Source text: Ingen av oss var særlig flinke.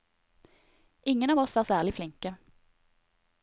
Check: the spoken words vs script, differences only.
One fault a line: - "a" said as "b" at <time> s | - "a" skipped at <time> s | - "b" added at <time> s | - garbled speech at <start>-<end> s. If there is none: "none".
none